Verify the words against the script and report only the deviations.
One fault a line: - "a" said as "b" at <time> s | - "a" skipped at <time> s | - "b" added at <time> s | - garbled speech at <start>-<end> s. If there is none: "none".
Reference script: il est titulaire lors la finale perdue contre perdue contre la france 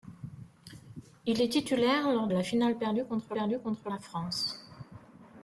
none